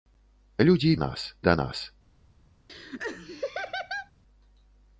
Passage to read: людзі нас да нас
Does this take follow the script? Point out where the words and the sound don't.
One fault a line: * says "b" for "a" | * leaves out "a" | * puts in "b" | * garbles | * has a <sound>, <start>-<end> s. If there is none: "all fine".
* has a laugh, 2.7-4.1 s